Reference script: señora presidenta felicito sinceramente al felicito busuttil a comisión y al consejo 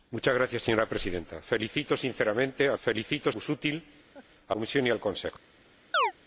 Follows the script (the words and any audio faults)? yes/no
no